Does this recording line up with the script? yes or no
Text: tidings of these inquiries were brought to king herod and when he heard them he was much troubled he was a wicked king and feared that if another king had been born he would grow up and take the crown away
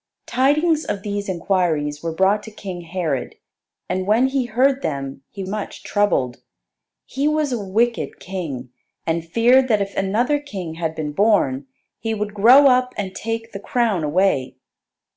no